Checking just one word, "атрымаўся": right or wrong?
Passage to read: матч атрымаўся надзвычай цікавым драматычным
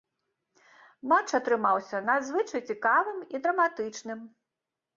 right